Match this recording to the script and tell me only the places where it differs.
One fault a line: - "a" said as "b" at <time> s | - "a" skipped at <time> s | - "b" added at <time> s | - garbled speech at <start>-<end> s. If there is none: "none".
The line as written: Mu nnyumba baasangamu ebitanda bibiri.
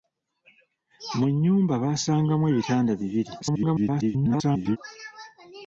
- garbled speech at 3.4-4.8 s